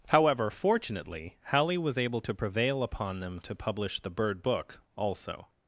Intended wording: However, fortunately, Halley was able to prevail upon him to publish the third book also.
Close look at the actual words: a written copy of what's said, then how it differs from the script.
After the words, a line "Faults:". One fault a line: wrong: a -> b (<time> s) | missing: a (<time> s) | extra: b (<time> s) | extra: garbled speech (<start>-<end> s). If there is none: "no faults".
However, fortunately, Halley was able to prevail upon them to publish the bird book also.
Faults:
wrong: him -> them (3.2 s)
wrong: third -> bird (4.1 s)